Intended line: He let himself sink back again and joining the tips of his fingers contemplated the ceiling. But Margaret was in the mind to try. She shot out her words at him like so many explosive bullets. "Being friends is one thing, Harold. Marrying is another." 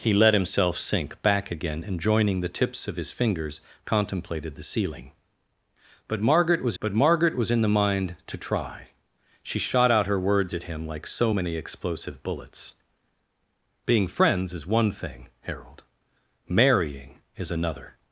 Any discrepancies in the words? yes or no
yes